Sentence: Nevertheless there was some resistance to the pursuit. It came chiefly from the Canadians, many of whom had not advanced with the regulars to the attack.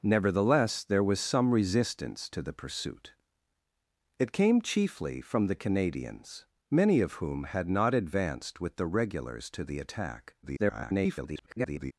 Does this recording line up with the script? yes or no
no